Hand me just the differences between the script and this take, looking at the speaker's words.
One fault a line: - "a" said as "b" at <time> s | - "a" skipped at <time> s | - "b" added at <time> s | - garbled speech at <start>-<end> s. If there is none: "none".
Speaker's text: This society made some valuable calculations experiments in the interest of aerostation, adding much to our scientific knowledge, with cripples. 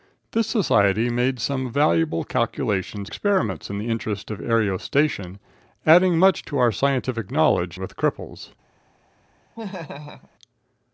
none